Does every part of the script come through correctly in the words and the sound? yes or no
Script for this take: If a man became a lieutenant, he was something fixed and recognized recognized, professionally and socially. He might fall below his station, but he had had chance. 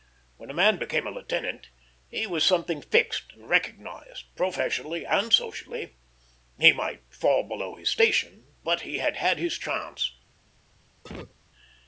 no